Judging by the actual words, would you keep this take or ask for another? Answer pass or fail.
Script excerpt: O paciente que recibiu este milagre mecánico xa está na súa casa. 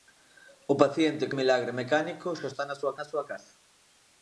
fail